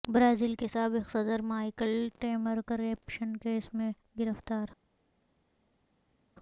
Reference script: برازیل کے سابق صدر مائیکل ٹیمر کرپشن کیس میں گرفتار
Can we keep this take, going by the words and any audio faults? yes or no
yes